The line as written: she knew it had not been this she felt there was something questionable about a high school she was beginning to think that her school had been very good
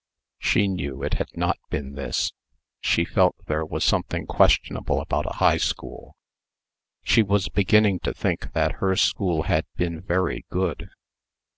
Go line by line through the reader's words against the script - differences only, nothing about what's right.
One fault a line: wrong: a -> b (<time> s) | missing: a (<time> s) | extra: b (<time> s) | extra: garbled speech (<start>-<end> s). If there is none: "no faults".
no faults